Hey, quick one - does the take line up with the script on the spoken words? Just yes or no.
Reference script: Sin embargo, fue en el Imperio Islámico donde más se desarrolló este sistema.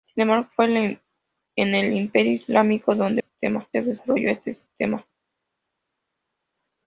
no